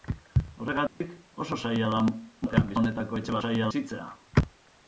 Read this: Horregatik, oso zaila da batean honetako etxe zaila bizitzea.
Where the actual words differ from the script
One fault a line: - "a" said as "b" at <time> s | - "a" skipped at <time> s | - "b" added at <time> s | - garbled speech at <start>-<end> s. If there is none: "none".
none